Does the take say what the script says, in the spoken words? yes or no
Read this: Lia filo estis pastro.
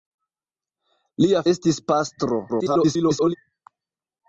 no